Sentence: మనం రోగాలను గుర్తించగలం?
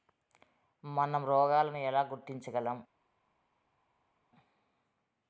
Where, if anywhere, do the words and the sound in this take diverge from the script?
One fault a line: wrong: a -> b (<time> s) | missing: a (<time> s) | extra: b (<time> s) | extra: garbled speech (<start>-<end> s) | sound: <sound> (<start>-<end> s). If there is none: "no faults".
extra: ఎలా (1.8 s)